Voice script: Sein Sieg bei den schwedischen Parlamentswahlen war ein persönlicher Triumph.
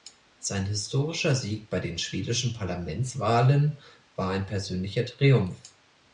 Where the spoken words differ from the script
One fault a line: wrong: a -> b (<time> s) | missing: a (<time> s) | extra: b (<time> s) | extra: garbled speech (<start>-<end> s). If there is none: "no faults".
extra: historischer (0.7 s)